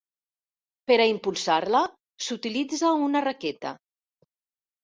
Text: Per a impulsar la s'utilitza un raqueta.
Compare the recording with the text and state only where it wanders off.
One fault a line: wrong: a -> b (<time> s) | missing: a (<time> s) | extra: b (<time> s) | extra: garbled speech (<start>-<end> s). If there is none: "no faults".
wrong: un -> una (3.1 s)